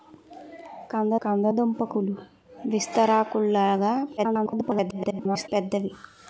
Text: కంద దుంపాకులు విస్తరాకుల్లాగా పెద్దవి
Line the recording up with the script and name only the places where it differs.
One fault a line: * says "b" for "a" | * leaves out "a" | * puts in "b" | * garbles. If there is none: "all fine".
* puts in "కంద"
* garbles